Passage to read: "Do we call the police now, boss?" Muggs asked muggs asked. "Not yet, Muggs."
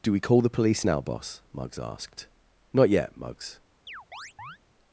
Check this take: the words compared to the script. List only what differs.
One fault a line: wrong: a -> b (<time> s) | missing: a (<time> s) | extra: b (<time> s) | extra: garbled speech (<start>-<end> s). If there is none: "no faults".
missing: muggs asked (2.3 s)